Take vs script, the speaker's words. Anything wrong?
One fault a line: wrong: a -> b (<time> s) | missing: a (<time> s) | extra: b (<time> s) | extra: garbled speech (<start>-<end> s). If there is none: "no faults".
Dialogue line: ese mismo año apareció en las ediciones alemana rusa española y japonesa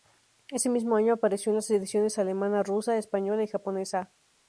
no faults